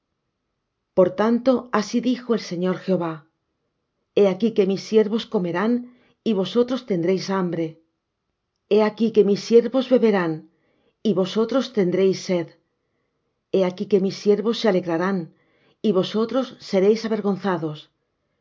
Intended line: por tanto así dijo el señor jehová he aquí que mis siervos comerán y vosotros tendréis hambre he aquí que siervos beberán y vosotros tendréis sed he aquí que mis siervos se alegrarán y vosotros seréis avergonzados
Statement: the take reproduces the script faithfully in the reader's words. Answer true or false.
false